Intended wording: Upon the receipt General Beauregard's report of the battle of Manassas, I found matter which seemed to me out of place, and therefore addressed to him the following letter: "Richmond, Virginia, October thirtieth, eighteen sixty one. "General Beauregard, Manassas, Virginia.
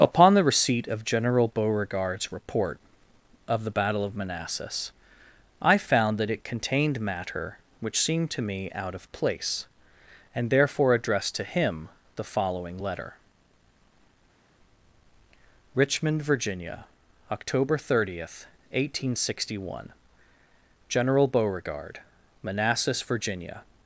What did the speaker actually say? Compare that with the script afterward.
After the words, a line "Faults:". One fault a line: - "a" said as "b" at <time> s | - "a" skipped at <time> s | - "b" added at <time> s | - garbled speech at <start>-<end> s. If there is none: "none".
Upon the receipt of General Beauregard's report of the battle of Manassas, I found that it contained matter which seemed to me out of place, and therefore addressed to him the following letter: "Richmond, Virginia, October thirtieth, eighteen sixty one. "General Beauregard, Manassas, Virginia.
Faults:
- "of" added at 0.9 s
- "that it contained" added at 6.2 s